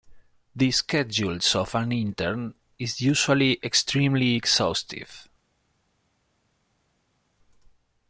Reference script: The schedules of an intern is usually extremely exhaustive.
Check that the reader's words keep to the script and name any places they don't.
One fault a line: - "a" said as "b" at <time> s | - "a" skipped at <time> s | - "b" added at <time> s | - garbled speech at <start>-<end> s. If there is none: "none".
none